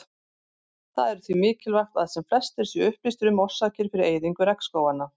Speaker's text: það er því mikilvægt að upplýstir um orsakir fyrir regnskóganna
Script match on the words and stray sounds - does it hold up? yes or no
no